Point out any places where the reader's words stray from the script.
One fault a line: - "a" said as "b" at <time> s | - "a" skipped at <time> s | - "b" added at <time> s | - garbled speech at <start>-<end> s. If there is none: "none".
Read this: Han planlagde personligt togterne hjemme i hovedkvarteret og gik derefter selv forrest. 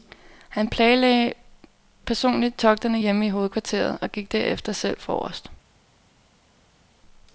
none